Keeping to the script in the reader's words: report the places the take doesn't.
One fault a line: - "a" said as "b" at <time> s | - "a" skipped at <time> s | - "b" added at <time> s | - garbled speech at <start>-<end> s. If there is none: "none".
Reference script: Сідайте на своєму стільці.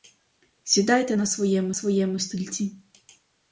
- "своєму" added at 1.7 s